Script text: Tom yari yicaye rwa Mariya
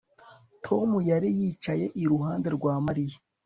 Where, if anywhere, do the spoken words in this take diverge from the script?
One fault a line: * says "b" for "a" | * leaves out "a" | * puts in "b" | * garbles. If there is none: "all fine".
* puts in "iruhande"